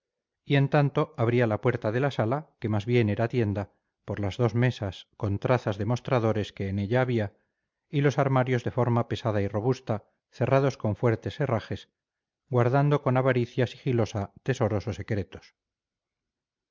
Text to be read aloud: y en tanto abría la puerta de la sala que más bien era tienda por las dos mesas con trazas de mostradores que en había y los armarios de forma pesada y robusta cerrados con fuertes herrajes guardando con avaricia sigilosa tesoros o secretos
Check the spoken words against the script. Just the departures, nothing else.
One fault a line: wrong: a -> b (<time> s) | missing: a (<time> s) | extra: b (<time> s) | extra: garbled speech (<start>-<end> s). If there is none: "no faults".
extra: ella (6.8 s)